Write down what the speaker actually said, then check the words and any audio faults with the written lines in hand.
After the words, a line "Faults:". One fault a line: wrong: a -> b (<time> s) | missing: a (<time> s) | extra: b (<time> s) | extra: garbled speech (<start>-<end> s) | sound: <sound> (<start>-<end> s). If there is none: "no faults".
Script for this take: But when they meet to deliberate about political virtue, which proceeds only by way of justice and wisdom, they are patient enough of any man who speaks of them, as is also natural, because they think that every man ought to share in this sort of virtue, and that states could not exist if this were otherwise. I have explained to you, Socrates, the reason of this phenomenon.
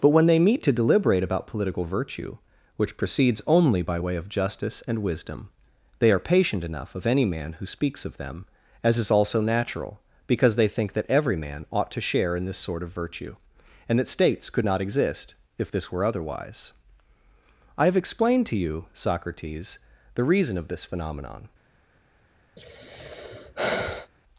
But when they meet to deliberate about political virtue, which proceeds only by way of justice and wisdom, they are patient enough of any man who speaks of them, as is also natural, because they think that every man ought to share in this sort of virtue, and that states could not exist if this were otherwise. I have explained to you, Socrates, the reason of this phenomenon.
Faults:
sound: sigh (22.6-24.1 s)